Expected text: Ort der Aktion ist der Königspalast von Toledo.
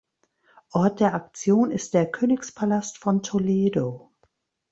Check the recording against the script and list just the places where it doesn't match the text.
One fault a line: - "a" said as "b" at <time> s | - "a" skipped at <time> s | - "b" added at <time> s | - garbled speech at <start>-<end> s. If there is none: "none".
none